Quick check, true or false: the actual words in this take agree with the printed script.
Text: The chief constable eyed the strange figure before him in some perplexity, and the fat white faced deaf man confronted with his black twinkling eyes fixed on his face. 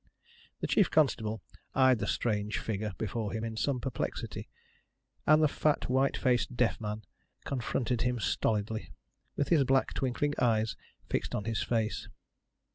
false